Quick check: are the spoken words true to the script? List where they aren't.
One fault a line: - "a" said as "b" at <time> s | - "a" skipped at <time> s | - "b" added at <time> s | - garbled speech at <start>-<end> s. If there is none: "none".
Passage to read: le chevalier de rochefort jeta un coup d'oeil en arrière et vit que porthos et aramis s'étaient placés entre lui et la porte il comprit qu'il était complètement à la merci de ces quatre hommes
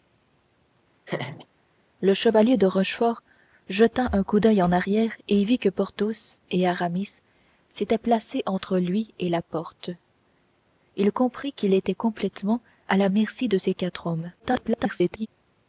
- garbled speech at 14.4-15.3 s